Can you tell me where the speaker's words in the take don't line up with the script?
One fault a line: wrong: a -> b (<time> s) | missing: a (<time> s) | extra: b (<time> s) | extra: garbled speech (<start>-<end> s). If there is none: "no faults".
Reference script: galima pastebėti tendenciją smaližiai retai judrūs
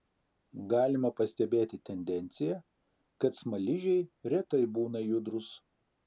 extra: kad (3.2 s)
extra: būna (4.8 s)